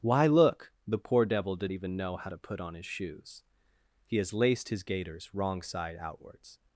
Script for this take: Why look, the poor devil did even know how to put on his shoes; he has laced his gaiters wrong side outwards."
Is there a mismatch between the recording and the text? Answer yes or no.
no